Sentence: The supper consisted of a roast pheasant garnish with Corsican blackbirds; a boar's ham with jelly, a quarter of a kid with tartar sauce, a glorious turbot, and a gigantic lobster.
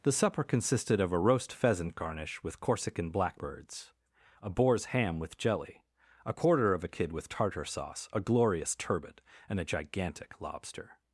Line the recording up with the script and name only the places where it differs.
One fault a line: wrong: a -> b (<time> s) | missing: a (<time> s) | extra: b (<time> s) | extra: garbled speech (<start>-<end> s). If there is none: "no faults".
no faults